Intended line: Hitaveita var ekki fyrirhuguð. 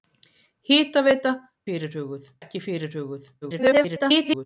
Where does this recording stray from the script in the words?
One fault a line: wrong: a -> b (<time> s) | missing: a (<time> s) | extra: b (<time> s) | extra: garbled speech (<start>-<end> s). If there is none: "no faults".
wrong: var -> fyrirhuguð (1.7 s)
extra: garbled speech (3.4-4.5 s)